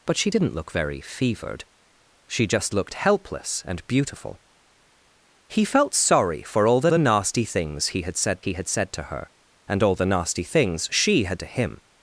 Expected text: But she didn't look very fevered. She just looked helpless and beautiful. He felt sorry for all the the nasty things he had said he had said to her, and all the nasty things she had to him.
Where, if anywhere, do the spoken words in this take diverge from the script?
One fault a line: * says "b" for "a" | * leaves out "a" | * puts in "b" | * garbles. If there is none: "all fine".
all fine